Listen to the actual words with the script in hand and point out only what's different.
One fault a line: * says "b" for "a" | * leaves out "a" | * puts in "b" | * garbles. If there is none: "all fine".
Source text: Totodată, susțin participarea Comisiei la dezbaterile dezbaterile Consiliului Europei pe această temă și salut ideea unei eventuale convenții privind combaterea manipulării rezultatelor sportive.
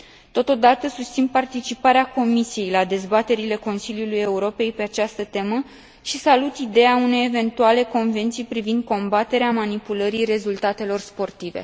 * leaves out "dezbaterile"